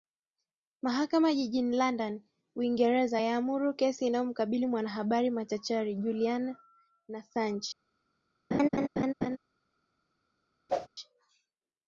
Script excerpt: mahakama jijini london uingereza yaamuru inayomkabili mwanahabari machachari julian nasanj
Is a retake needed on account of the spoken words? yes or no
yes